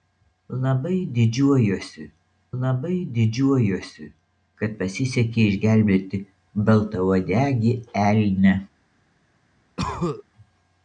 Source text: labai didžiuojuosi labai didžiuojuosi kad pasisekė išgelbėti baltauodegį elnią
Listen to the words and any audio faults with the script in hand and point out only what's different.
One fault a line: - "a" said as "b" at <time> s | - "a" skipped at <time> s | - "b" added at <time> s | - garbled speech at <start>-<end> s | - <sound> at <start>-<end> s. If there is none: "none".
- cough at 9.8-10.2 s